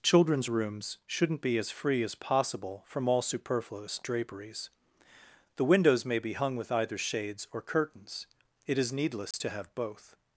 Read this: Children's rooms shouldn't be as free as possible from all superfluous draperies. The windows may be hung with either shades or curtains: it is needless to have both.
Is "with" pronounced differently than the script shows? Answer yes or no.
no